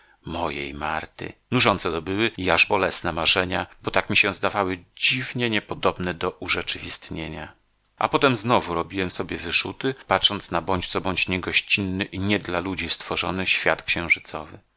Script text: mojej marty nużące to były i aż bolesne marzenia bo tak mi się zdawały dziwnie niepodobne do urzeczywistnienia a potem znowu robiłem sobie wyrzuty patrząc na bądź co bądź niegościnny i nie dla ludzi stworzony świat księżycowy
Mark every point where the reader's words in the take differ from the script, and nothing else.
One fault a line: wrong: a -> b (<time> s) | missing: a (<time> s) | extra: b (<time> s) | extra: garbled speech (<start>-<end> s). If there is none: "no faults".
no faults